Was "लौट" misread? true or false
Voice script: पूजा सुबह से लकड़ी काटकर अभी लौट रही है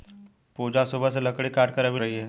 true